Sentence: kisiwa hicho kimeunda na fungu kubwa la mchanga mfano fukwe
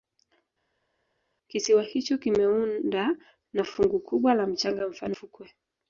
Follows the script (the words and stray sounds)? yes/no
yes